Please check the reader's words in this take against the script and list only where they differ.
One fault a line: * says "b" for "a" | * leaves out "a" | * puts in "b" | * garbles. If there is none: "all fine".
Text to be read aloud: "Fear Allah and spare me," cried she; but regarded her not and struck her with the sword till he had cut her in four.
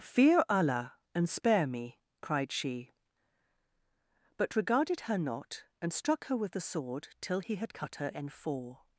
all fine